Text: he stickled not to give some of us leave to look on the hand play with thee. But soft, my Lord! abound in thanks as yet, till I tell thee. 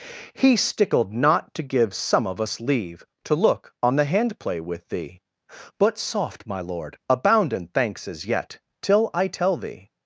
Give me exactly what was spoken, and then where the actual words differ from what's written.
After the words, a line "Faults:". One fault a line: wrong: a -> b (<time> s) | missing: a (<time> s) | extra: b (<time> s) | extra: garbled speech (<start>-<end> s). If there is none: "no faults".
he stickled not to give some of us leave to look on the hand play with thee. But soft, my Lord! abound in thanks as yet, till I tell thee.
Faults:
no faults